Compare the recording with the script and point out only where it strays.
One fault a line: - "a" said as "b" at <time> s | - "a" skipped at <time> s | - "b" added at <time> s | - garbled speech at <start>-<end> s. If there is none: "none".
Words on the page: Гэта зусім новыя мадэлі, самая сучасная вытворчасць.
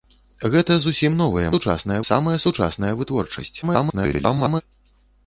- "мадэлі" said as "сучасная" at 1.5 s
- garbled speech at 3.6-4.6 s